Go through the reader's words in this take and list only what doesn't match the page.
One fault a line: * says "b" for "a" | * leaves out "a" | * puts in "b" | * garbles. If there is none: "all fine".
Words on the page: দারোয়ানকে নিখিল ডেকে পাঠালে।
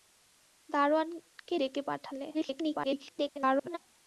* leaves out "নিখিল"
* garbles